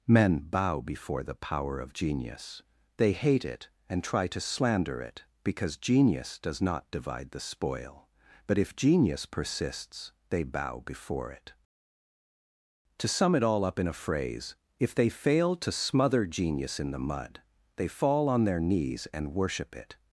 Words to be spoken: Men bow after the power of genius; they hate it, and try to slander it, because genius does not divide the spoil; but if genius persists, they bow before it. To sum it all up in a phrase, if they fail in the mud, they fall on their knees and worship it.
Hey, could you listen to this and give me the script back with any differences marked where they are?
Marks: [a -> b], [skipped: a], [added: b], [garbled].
Men bow [after -> before] the power of genius; they hate it, and try to slander it, because genius does not divide the spoil; but if genius persists, they bow before it. To sum it all up in a phrase, if they fail [added: to smother genius] in the mud, they fall on their knees and worship it.